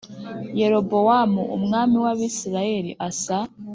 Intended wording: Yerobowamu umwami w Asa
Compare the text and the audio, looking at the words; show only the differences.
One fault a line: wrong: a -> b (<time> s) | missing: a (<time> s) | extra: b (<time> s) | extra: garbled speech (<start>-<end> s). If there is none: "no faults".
extra: Abisirayeli (2.1 s)